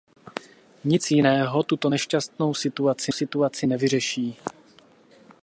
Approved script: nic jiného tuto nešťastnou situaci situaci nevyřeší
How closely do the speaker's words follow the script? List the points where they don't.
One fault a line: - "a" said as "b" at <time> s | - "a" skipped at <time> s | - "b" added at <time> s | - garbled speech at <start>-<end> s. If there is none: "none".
none